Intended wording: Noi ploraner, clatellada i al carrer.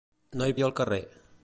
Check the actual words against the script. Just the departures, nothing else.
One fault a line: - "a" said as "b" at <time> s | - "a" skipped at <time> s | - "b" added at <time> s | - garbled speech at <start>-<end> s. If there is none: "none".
- "ploraner clatellada" skipped at 0.5 s